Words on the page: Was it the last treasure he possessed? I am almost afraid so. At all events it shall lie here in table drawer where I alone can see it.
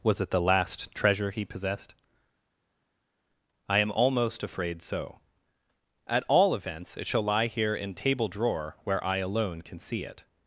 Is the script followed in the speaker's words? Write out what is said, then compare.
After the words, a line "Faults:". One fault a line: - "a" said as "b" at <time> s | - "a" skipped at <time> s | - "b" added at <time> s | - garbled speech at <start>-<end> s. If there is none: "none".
Was it the last treasure he possessed? I am almost afraid so. At all events it shall lie here in table drawer where I alone can see it.
Faults:
none